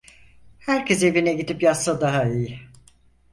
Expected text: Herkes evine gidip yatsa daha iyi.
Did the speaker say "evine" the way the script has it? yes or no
yes